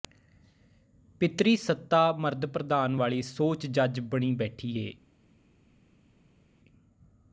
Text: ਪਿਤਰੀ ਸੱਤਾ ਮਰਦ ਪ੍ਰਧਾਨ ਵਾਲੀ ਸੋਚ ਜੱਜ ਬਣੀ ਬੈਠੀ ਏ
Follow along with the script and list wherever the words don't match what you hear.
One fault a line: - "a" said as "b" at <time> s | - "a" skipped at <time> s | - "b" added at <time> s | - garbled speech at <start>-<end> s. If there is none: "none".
none